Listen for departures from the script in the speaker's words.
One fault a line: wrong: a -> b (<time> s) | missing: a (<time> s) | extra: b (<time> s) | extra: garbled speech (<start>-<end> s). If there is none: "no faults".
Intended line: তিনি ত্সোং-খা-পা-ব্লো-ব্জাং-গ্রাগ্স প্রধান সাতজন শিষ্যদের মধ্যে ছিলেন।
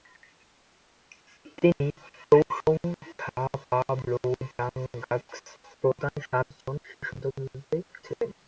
no faults